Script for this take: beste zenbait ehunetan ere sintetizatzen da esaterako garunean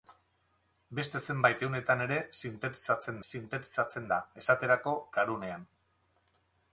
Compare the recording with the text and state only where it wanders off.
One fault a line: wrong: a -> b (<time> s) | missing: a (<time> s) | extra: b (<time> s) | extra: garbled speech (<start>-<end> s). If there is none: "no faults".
extra: sintetizatzen (3.3 s)